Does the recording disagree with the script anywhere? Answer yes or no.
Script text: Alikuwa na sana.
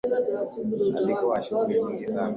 yes